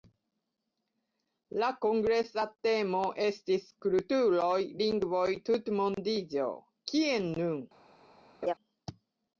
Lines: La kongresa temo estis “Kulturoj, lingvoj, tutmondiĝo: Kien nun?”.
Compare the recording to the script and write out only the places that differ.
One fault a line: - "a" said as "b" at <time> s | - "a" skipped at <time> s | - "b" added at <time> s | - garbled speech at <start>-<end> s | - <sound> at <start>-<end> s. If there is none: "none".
- laugh at 8.4-8.5 s